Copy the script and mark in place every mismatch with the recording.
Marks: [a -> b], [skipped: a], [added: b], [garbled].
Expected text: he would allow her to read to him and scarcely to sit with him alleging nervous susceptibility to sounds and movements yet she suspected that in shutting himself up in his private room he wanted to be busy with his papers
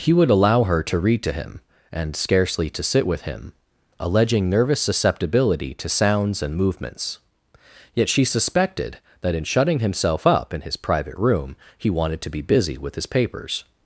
he would allow her to read to him and scarcely to sit with him alleging nervous susceptibility to sounds and movements yet she suspected that in shutting himself up in his private room he wanted to be busy with his papers